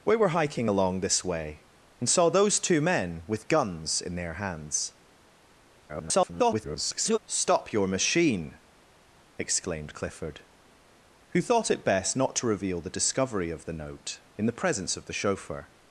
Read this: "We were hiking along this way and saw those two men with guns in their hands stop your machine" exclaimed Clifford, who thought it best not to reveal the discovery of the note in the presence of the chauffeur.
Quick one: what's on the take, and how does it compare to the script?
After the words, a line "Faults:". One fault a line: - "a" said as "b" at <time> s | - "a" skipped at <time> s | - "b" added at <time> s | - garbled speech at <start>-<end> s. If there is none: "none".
"We were hiking along this way and saw those two men with guns in their hands [garbled] stop your machine" exclaimed Clifford, who thought it best not to reveal the discovery of the note in the presence of the chauffeur.
Faults:
- garbled speech at 5.9-7.2 s